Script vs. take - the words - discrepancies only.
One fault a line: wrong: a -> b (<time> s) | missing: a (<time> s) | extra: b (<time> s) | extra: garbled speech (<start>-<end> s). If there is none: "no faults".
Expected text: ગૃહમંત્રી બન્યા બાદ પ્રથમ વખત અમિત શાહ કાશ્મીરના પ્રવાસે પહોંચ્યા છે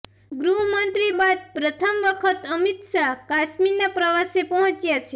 missing: બન્યા (1.1 s)